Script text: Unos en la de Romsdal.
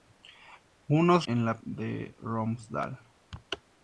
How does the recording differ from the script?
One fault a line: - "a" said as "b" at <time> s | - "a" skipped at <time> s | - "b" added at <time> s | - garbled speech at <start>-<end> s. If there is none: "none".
none